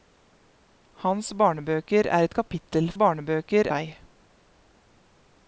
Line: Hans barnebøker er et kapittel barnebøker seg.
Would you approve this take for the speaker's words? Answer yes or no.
yes